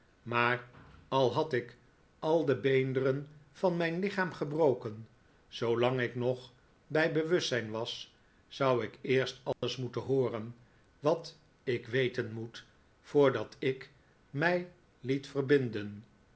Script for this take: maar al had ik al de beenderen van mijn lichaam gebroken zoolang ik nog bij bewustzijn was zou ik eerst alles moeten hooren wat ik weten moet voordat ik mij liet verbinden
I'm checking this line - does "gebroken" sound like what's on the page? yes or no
yes